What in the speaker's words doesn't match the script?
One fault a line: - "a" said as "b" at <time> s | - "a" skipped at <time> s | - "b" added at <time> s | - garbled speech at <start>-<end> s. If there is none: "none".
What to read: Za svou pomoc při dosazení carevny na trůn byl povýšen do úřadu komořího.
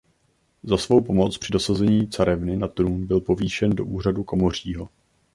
none